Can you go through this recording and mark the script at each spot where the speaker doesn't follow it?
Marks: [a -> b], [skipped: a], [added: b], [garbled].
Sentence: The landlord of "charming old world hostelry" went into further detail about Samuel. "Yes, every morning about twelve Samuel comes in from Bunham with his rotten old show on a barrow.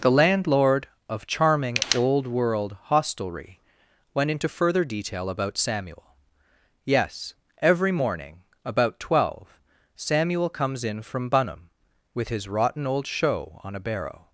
The landlord of "charming old world hostelry" went into further detail about Samuel. "Yes, every morning about twelve Samuel comes in from Bunham with his rotten old show on a barrow.